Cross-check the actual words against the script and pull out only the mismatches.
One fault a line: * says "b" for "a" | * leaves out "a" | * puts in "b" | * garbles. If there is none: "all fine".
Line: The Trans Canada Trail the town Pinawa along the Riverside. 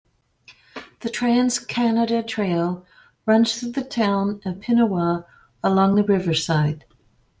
* puts in "runs through"
* puts in "of"